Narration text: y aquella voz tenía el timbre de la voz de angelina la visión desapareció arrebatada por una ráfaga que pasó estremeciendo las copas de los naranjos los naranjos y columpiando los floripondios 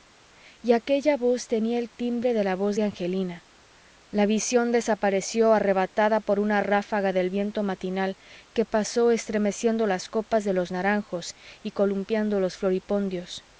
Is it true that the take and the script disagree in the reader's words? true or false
true